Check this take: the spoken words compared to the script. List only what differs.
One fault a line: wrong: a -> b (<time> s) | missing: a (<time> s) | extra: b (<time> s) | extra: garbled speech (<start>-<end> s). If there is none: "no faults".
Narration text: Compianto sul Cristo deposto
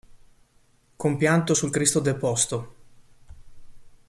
no faults